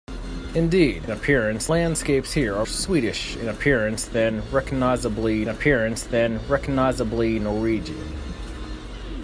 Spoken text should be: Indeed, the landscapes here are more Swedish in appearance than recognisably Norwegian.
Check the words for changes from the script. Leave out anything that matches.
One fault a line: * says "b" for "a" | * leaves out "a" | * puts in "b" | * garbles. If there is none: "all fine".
* says "appearance" for "the"
* leaves out "more"
* puts in "appearance than recognisably"